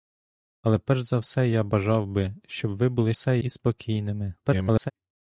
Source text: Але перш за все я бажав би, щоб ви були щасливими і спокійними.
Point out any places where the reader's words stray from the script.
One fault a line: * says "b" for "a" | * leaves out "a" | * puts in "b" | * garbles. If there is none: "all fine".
* says "все" for "щасливими"
* garbles